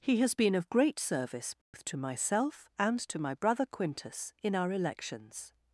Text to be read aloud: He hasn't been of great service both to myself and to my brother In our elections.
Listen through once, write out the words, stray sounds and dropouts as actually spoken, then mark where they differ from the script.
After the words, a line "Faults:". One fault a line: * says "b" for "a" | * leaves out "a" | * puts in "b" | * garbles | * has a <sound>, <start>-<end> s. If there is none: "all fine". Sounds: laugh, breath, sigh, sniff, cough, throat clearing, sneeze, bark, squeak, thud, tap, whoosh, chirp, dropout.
He has been of great service both to myself and to my brother Quintus in our elections.
Faults:
* says "has" for "hasn't"
* has a dropout, 1.6-1.7 s
* puts in "Quintus"